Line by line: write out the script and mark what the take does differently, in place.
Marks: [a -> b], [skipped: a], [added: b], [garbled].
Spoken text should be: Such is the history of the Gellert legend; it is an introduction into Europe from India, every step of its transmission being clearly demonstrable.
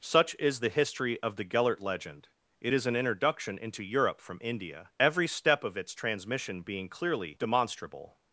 Such is the history of the Gellert legend; it is an introduction into Europe from India, every step of its transmission being clearly demonstrable.